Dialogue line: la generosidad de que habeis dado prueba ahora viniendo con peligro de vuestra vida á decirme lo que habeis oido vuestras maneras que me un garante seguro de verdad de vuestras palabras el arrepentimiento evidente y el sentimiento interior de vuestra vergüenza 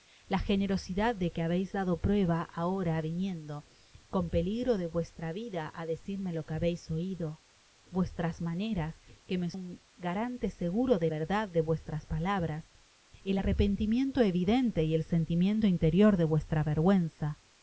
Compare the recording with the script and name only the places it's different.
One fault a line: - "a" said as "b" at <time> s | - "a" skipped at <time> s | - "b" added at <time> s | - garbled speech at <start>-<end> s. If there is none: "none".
none